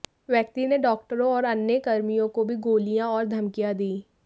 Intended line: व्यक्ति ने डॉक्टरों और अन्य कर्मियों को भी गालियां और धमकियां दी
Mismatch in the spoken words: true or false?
false